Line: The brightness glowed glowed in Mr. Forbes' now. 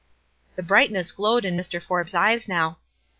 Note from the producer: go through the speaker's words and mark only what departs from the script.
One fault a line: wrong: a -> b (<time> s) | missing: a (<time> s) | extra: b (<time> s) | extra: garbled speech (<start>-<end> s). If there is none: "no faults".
missing: glowed (1.4 s)
extra: eyes (2.1 s)